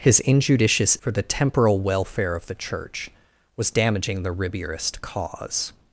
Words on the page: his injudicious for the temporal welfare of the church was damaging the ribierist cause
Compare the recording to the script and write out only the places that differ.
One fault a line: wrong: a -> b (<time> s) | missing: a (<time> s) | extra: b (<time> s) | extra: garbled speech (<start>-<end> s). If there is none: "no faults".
no faults